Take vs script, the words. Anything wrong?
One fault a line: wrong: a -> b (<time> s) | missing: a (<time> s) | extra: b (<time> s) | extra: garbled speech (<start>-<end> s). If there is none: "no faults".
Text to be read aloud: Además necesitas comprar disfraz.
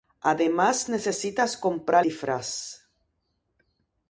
no faults